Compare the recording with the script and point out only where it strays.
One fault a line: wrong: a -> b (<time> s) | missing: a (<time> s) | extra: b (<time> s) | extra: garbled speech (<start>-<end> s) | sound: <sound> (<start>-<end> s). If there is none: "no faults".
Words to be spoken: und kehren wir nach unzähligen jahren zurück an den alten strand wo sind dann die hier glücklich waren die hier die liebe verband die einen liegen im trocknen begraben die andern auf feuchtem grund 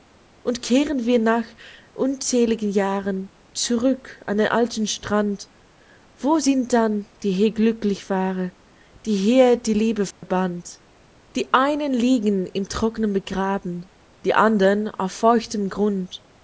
sound: dropout (10.1-10.2 s)